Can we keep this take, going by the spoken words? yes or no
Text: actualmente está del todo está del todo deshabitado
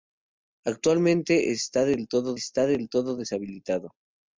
yes